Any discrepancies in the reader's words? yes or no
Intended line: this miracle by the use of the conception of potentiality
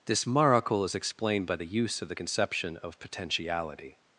yes